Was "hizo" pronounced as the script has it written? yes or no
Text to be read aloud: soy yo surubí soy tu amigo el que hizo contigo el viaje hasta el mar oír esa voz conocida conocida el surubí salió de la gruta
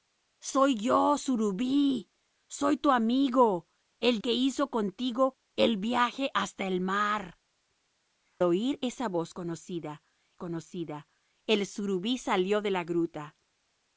yes